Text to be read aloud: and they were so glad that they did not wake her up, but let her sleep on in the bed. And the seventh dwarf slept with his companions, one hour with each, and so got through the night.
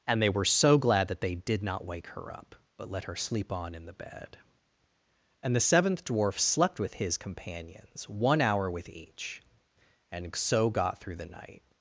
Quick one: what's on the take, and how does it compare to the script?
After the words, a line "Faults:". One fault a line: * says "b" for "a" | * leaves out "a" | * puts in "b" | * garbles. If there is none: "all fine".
and they were so glad that they did not wake her up, but let her sleep on in the bed. And the seventh dwarf slept with his companions, one hour with each, and so got through the night.
Faults:
all fine